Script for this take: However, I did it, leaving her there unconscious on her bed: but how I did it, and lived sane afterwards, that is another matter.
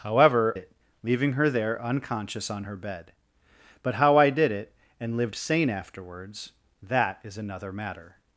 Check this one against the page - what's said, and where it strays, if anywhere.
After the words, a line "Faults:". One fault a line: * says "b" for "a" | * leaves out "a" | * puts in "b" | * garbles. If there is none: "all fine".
However, it, leaving her there unconscious on her bed: but how I did it, and lived sane afterwards, that is another matter.
Faults:
* leaves out "I did"